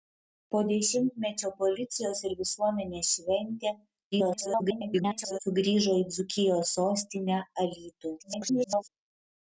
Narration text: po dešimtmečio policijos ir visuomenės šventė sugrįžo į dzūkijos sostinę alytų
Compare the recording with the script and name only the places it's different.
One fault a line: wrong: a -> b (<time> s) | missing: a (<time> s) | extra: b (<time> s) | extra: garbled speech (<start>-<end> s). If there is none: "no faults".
extra: garbled speech (4.1-5.4 s)
extra: garbled speech (8.2-8.9 s)